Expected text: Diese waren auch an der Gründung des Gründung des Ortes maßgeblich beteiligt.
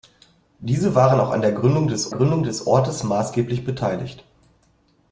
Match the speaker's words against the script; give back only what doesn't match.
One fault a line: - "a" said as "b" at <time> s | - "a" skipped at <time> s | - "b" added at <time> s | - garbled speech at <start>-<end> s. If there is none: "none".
none